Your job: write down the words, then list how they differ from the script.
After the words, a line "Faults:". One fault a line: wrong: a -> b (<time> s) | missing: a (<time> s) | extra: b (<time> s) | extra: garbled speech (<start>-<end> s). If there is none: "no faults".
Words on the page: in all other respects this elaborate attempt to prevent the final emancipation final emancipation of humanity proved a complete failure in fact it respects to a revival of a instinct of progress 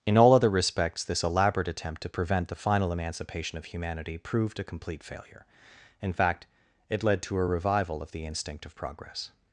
in all other respects this elaborate attempt to prevent the final emancipation of humanity proved a complete failure in fact it led to a revival of the instinct of progress
Faults:
missing: final emancipation (3.6 s)
wrong: respects -> led (7.0 s)
wrong: a -> the (8.1 s)